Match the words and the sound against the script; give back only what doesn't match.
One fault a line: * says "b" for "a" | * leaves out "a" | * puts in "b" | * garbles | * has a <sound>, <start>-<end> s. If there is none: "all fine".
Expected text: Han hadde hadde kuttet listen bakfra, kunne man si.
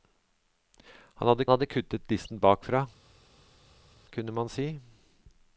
all fine